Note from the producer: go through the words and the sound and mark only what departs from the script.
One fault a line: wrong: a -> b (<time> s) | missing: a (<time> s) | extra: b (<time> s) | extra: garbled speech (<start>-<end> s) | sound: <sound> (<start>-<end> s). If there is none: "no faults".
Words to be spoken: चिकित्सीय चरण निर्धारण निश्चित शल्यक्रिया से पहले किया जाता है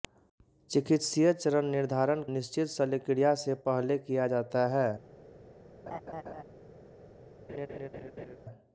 sound: laugh (5.9-6.4 s)
sound: laugh (7.5-8.4 s)